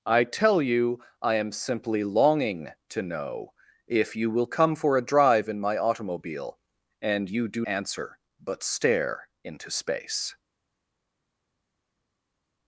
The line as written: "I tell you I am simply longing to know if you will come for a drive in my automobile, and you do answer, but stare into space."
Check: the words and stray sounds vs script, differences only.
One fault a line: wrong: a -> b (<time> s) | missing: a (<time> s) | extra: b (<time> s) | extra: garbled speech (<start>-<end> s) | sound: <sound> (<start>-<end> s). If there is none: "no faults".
no faults